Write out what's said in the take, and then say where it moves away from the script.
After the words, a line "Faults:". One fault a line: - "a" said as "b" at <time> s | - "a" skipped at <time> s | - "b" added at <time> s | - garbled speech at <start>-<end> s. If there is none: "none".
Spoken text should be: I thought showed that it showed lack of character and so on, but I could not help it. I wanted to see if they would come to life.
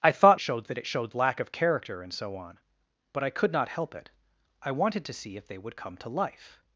I thought showed that it showed lack of character and so on, but I could not help it. I wanted to see if they would come to life.
Faults:
none